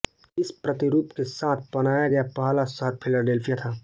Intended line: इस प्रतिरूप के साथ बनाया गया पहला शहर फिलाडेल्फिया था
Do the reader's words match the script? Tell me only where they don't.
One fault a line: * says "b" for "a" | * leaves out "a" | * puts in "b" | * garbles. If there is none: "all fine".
all fine